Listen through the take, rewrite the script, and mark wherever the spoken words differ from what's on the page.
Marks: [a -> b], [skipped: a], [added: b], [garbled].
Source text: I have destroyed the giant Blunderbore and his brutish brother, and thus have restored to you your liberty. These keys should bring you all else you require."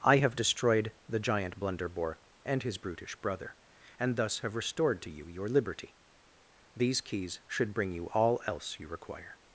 I have destroyed the giant Blunderbore and his brutish brother, and thus have restored to you your liberty. These keys should bring you all else you require."